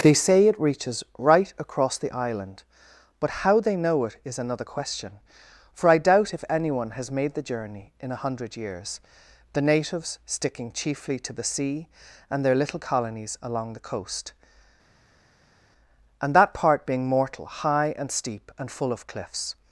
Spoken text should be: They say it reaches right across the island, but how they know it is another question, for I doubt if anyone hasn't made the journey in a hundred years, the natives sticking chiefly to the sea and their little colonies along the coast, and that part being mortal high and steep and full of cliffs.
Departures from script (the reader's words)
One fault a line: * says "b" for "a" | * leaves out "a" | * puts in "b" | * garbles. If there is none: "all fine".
* says "has" for "hasn't"